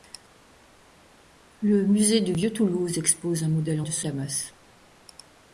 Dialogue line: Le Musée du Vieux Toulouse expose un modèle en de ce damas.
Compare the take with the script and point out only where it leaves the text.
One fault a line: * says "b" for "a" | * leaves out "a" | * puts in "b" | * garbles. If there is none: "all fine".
all fine